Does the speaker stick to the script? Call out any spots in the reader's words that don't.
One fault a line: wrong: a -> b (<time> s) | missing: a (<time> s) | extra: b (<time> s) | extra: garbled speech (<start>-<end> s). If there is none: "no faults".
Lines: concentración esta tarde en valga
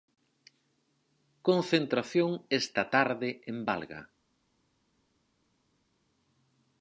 no faults